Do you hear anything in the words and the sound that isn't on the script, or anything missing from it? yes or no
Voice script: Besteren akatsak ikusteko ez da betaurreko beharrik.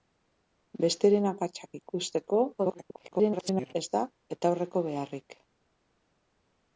yes